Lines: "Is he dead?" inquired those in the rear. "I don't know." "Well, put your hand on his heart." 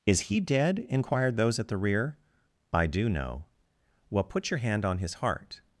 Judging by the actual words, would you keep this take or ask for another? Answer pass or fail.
fail